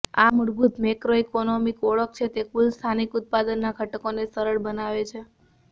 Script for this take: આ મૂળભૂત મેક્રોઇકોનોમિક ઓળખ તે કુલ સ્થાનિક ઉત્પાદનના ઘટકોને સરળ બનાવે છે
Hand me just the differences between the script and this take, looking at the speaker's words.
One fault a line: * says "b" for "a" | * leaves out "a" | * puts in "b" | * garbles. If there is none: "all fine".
* puts in "છે"